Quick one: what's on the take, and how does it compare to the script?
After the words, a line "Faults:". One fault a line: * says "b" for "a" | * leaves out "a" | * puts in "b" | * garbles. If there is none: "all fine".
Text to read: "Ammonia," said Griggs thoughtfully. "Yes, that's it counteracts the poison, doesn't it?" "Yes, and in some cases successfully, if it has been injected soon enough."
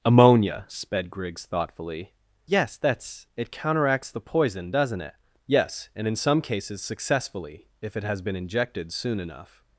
"Ammonia," sped Griggs thoughtfully. "Yes, that's it counteracts the poison, doesn't it?" "Yes, and in some cases successfully, if it has been injected soon enough."
Faults:
* says "sped" for "said"